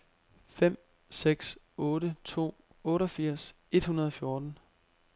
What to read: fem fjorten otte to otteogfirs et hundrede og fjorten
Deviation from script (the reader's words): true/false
true